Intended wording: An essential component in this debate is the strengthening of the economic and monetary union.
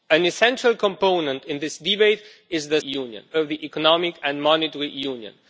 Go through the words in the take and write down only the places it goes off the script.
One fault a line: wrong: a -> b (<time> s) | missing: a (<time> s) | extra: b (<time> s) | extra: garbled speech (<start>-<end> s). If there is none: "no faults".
wrong: strengthening -> union (2.8 s)